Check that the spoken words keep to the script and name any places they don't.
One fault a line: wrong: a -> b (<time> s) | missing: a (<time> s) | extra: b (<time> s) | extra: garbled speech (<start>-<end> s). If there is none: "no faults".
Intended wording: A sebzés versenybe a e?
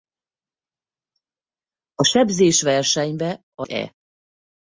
no faults